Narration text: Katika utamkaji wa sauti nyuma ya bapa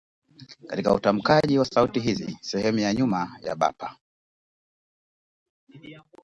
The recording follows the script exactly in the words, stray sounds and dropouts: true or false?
false